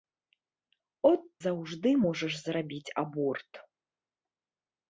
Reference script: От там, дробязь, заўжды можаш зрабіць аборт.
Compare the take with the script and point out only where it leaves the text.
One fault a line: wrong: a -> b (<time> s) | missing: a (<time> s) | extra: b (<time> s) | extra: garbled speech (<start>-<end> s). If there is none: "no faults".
missing: там дробязь (1.2 s)